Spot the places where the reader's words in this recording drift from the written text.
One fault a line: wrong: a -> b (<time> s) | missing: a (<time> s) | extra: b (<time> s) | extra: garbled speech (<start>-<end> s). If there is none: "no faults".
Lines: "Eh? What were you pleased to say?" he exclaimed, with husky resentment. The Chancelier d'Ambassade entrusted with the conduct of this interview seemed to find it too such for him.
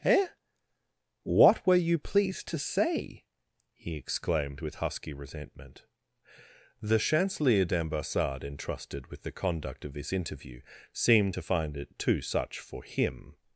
no faults